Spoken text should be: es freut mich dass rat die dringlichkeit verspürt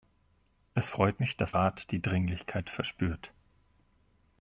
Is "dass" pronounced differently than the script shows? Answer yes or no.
no